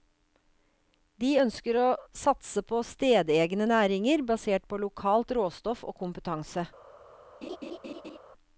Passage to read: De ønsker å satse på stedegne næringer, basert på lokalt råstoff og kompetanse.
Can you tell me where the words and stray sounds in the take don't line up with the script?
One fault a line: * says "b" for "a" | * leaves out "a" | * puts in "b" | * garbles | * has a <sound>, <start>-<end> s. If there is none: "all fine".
* has a laugh, 7.4-8.2 s